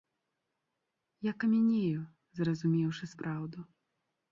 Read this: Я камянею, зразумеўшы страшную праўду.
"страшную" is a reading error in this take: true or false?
true